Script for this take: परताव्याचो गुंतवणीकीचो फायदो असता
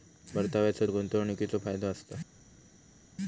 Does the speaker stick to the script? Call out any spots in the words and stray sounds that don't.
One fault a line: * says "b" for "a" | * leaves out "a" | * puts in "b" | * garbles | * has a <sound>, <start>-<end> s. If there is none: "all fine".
all fine